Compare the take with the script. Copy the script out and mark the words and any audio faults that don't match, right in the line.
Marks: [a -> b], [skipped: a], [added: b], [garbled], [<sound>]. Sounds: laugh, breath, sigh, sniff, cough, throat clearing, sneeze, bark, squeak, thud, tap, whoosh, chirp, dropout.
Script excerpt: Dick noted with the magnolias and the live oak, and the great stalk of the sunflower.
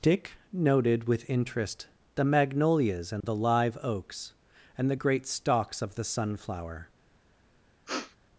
Dick noted with [added: interest] the magnolias and [dropout] the live [oak, -> oaks] and the great [stalk -> stalks] of the sunflower. [sniff]